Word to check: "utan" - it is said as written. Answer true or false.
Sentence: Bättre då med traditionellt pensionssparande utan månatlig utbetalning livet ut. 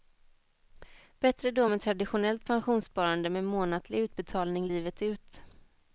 false